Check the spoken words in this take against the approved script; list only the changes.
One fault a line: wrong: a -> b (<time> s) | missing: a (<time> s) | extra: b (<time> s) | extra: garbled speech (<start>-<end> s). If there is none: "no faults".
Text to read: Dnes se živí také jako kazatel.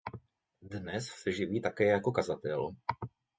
no faults